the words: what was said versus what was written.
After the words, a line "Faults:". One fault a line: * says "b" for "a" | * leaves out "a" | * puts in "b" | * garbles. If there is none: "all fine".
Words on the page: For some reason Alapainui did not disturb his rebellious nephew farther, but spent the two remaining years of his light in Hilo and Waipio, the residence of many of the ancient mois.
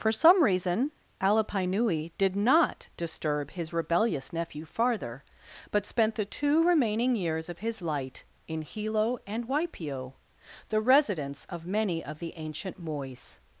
For some reason Alapainui did not disturb his rebellious nephew farther, but spent the two remaining years of his light in Hilo and Waipio, the residence of many of the ancient mois.
Faults:
all fine